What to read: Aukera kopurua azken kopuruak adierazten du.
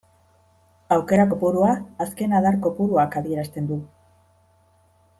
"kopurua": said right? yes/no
yes